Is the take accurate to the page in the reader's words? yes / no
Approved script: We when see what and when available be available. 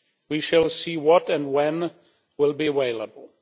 no